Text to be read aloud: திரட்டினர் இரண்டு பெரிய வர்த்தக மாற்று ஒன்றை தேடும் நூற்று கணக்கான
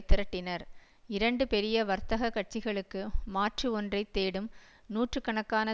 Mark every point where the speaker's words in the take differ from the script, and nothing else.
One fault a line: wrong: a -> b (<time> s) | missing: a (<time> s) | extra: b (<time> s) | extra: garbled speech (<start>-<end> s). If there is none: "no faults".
extra: கட்சிகளுக்கு (2.3 s)